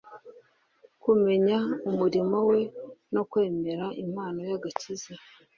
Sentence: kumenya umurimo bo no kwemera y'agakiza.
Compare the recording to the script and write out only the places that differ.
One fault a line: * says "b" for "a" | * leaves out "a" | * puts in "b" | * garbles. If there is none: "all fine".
* says "we" for "bo"
* puts in "impano"